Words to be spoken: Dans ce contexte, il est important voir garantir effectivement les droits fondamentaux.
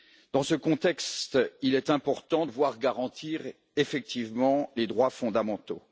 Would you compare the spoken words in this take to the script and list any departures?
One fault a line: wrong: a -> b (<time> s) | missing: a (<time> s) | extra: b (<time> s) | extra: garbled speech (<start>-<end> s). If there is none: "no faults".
no faults